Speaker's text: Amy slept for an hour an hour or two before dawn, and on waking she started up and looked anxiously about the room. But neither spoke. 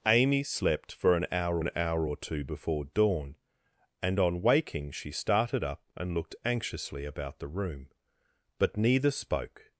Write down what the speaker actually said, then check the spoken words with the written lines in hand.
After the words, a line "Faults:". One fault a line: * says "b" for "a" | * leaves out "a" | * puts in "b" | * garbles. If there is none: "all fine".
Amy slept for an hour an hour or two before dawn, and on waking she started up and looked anxiously about the room. But neither spoke.
Faults:
all fine